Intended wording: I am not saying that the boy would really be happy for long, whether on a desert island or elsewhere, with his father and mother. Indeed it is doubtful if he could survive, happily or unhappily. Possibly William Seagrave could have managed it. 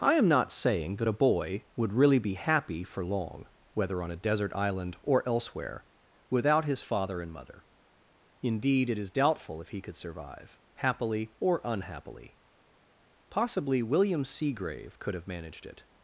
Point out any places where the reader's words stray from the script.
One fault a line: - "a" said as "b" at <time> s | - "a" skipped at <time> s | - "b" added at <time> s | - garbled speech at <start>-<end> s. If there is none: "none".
- "the" said as "a" at 1.1 s
- "with" said as "without" at 6.3 s